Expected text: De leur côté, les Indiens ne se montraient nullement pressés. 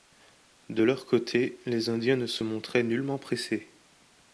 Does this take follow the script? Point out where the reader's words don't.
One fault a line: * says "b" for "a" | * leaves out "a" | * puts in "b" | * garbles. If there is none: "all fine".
all fine